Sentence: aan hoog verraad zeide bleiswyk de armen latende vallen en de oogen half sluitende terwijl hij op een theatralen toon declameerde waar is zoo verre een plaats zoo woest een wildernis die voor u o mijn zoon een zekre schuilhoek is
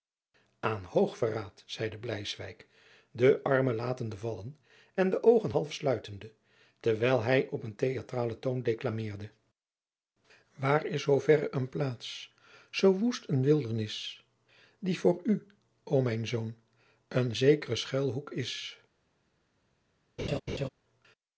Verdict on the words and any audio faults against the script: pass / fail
fail